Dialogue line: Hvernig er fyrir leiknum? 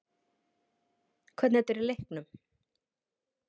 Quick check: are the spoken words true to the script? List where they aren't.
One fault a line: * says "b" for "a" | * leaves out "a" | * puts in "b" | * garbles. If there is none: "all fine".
all fine